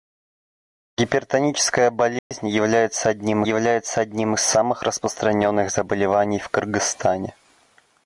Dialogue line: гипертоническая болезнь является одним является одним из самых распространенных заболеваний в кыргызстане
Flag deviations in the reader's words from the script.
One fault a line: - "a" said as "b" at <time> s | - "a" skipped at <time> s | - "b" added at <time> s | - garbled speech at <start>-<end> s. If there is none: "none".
none